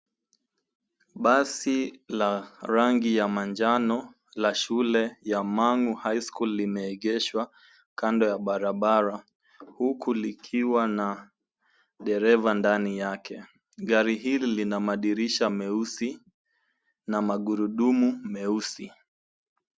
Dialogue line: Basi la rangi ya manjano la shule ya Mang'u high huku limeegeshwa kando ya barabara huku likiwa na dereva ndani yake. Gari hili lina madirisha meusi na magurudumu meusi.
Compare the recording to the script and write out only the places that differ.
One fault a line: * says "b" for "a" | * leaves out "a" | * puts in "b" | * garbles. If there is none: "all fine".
* says "school" for "huku"